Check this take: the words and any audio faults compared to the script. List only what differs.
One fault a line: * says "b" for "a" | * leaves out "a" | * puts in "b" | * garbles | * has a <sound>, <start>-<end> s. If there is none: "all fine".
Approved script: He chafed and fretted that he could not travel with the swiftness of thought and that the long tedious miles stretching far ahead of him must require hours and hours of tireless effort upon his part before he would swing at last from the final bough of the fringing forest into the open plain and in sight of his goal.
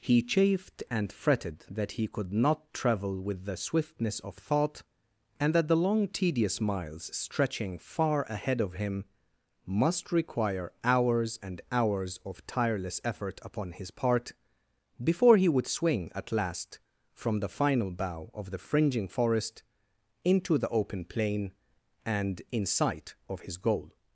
all fine